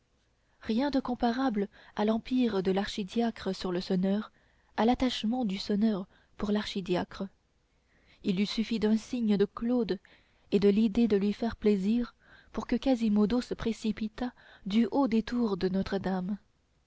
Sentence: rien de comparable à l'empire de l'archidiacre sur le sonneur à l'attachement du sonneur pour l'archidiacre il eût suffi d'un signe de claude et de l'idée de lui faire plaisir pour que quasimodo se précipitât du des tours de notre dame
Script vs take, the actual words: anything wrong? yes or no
yes